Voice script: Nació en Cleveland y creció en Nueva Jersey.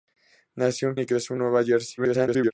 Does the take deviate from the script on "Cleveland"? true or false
true